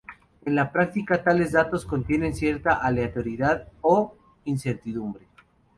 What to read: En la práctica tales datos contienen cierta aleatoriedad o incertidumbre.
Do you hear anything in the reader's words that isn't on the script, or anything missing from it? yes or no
no